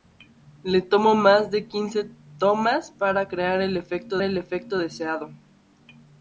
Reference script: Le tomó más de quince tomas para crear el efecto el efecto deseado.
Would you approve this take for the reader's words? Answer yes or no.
yes